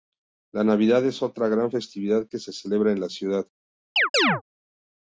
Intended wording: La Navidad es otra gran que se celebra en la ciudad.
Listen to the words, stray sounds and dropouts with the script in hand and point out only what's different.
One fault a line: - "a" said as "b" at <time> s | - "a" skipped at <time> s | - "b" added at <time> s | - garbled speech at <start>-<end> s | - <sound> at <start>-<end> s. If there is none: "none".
- "festividad" added at 1.7 s
- chirp at 4.0-4.4 s